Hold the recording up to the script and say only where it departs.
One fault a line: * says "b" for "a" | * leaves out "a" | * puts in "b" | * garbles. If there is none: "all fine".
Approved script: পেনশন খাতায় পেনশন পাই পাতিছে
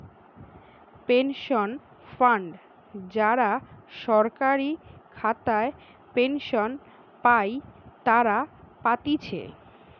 * puts in "ফান্ড যারা সরকারি"
* puts in "তারা"